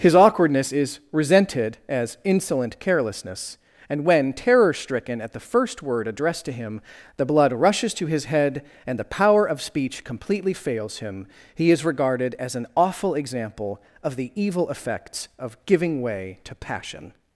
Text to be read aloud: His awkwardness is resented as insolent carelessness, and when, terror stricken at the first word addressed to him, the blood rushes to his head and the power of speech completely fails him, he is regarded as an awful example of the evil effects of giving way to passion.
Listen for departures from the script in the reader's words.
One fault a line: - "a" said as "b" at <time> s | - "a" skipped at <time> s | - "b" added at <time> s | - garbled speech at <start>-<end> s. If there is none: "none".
none